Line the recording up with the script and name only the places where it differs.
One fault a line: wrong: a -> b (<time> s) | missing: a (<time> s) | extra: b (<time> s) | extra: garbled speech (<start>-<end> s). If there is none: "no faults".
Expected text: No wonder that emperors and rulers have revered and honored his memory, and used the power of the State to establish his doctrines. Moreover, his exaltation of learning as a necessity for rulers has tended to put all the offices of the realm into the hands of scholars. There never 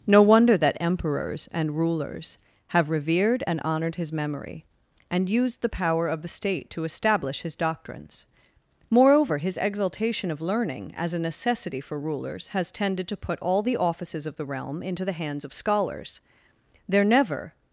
no faults